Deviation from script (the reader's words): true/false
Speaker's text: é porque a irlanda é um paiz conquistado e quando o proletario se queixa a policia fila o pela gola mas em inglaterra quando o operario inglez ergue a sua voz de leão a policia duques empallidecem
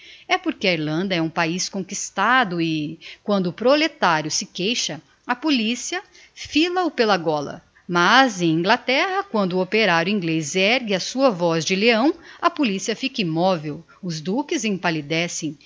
true